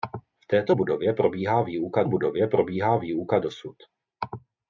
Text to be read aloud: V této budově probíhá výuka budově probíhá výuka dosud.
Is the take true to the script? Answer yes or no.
yes